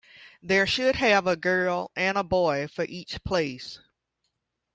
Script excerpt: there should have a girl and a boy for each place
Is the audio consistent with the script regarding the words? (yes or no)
yes